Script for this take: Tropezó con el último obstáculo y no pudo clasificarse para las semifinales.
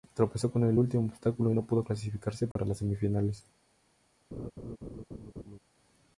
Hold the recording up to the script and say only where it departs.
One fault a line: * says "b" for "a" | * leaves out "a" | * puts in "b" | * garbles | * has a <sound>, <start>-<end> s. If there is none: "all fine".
* has a dropout, 2.5-2.6 s
* has a laugh, 4.3-5.6 s